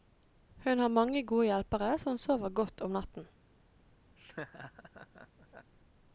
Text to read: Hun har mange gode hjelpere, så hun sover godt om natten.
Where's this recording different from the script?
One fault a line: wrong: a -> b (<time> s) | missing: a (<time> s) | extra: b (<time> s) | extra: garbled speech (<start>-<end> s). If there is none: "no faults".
no faults